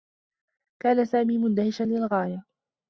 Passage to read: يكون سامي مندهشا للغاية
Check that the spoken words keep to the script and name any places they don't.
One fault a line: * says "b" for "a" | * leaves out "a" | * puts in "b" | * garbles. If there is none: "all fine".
* says "كان" for "يكون"